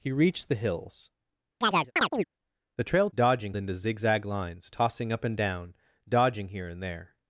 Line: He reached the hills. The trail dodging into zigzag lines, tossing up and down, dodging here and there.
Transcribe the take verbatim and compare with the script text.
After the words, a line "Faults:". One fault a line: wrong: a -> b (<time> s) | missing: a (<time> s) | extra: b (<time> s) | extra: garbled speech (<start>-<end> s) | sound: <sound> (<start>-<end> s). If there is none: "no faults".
He reached the hills. The trail dodging into zigzag lines, tossing up and down, dodging here and there.
Faults:
sound: chirp (1.6-2.2 s)